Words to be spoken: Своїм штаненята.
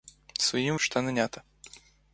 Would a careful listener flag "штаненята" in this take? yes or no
no